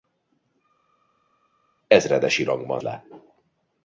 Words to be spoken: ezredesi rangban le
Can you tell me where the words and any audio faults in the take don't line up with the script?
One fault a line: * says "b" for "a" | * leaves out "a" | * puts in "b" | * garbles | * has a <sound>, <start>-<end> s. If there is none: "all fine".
all fine